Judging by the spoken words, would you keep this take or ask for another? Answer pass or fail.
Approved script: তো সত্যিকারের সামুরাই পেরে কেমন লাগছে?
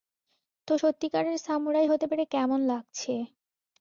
fail